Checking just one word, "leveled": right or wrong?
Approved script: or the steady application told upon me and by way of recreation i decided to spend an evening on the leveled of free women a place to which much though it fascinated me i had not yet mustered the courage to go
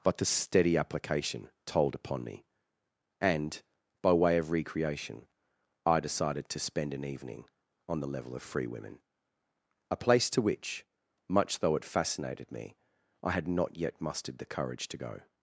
wrong